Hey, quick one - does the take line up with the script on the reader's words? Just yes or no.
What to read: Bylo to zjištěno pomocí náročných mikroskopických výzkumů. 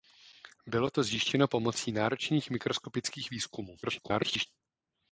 no